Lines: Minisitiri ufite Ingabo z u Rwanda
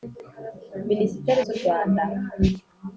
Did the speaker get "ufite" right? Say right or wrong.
wrong